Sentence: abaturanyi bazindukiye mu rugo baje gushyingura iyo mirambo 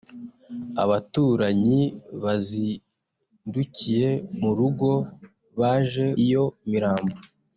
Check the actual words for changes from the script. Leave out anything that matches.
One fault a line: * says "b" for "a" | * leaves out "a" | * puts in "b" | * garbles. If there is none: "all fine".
* leaves out "gushyingura"